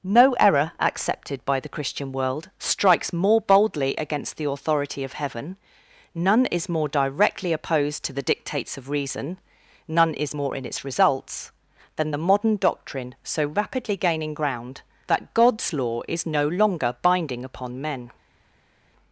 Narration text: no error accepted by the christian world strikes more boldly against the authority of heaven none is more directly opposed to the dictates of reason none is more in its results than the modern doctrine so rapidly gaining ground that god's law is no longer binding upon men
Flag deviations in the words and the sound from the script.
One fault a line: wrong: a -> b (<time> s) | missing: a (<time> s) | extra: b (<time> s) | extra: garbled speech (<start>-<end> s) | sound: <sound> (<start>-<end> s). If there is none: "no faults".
no faults